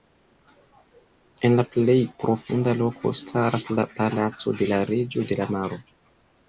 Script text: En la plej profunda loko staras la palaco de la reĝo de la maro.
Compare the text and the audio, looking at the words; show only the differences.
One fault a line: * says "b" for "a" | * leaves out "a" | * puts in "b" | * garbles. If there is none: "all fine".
all fine